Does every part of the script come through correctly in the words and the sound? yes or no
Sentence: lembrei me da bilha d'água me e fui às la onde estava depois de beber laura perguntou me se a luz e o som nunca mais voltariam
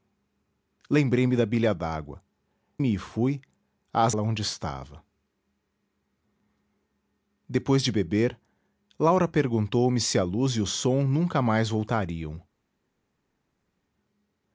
yes